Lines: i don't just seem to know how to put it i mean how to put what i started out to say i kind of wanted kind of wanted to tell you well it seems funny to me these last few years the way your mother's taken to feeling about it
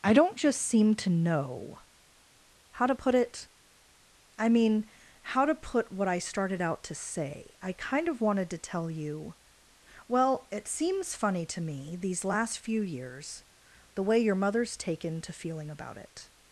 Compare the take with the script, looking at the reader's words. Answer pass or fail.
fail